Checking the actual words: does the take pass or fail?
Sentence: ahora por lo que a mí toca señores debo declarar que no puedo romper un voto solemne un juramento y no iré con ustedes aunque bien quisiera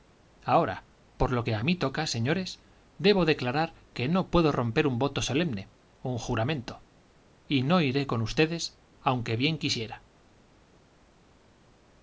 pass